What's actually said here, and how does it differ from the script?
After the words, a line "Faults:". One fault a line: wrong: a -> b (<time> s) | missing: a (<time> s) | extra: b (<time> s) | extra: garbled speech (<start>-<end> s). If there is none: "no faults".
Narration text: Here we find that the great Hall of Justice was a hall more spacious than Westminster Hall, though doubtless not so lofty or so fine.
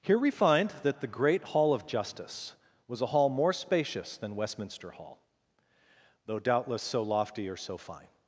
Here we find that the great Hall of Justice was a hall more spacious than Westminster Hall, though doubtless so lofty or so fine.
Faults:
missing: not (6.8 s)